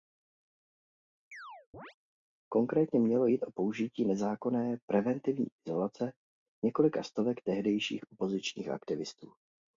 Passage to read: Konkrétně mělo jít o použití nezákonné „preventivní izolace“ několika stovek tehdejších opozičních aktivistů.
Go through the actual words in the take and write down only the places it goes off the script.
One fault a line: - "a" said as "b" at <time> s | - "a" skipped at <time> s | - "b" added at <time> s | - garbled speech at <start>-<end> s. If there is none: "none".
none